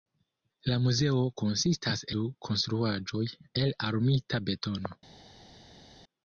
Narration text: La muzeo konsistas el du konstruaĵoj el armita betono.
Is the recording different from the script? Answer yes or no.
yes